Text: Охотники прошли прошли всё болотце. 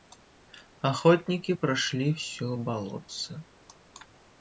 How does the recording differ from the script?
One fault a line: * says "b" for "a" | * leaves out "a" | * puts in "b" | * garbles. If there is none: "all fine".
* leaves out "прошли"